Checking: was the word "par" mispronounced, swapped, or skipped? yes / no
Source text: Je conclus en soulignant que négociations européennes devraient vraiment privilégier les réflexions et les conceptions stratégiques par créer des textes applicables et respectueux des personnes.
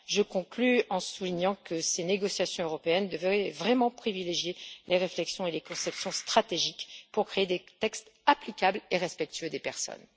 yes